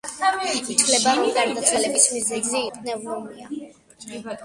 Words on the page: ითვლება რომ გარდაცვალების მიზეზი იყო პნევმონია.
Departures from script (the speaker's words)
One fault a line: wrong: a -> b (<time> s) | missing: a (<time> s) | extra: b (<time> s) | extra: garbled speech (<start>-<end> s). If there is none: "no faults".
missing: იყო (2.6 s)